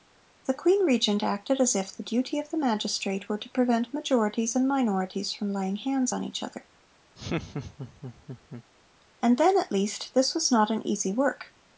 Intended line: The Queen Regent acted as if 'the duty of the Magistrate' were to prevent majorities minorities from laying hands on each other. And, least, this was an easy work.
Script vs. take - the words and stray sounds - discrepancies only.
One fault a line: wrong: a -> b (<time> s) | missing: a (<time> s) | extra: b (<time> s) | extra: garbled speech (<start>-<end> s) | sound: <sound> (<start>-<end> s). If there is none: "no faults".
extra: and (4.5 s)
sound: laugh (7.2-8.6 s)
extra: then at (9.4 s)
extra: not (10.5 s)